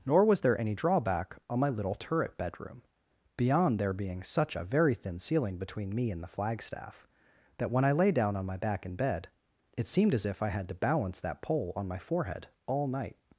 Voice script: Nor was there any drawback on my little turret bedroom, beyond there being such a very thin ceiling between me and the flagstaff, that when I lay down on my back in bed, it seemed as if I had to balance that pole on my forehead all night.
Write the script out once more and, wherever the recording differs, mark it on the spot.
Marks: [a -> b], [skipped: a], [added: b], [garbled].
Nor was there any drawback on my little turret bedroom, beyond there being such a very thin ceiling between me and the flagstaff, that when I lay down on my back in bed, it seemed as if I had to balance that pole on my forehead all night.